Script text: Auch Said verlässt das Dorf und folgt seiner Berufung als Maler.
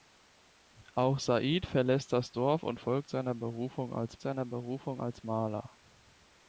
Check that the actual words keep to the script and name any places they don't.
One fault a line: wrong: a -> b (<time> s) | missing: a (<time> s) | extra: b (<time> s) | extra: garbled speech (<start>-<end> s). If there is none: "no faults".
extra: seiner Berufung als (4.2 s)